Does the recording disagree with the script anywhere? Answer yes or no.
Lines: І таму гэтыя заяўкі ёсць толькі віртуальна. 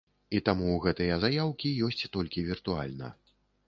no